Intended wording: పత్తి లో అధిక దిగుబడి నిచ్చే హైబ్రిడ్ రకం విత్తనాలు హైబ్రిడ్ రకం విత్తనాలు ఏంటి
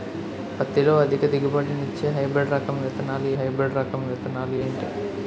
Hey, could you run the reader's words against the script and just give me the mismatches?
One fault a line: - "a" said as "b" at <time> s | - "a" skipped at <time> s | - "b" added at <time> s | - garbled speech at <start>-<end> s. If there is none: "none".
none